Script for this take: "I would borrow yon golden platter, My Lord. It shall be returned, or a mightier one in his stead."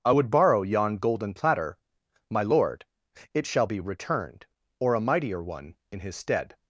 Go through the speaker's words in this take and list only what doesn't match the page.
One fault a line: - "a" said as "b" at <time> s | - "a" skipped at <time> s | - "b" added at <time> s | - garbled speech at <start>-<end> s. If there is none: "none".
none